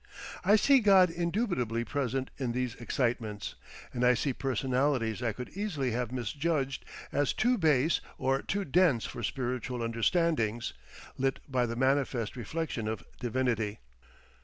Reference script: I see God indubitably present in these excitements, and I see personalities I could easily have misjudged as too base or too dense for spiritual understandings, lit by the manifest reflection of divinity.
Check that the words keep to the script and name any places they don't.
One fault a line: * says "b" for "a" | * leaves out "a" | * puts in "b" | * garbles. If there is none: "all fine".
all fine